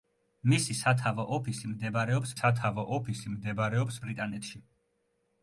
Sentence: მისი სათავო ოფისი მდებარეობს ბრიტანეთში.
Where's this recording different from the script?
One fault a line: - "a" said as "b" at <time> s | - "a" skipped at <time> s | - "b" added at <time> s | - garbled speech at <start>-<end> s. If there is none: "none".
- "სათავო ოფისი მდებარეობს" added at 2.3 s